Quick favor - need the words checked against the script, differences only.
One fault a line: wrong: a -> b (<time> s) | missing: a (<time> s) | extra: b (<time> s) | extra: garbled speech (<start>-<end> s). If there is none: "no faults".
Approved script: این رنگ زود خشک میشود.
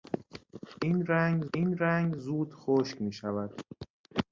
extra: این رنگ (1.5 s)